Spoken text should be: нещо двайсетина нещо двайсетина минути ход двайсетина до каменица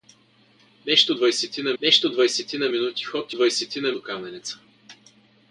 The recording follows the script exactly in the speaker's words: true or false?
true